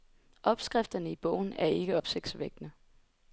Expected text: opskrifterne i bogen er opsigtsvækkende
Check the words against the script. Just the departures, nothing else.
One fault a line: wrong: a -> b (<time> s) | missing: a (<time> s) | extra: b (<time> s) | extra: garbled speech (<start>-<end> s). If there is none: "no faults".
extra: ikke (1.7 s)